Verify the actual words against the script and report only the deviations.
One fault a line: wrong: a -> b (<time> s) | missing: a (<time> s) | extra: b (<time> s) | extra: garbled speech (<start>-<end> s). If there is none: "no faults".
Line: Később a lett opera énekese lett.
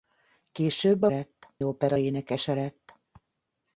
no faults